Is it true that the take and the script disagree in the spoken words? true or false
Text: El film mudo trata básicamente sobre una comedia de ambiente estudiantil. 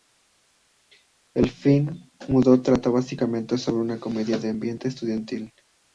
false